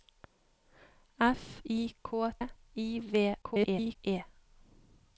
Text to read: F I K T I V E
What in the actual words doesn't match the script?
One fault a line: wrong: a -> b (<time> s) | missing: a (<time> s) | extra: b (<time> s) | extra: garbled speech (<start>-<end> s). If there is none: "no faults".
missing: T (2.3 s)
extra: garbled speech (3.4-4.0 s)